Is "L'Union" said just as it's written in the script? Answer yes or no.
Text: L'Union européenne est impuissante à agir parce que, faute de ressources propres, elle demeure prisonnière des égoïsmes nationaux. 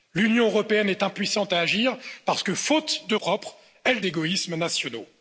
yes